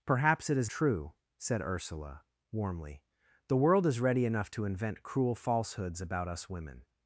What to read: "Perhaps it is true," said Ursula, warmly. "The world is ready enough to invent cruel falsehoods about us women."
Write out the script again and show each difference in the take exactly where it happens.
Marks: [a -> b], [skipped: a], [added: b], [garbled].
"Perhaps it is true," said Ursula, warmly. "The world is ready enough to invent cruel falsehoods about us women."